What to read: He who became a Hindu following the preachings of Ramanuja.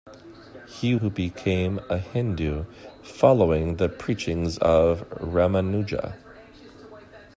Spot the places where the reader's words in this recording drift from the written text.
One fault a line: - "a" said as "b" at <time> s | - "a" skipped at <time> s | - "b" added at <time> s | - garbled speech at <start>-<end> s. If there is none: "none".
none